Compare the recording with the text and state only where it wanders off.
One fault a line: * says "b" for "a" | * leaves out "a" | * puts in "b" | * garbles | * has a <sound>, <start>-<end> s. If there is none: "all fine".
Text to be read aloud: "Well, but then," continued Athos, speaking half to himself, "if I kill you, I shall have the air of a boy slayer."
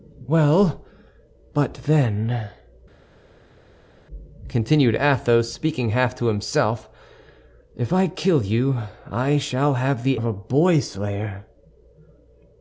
* leaves out "air"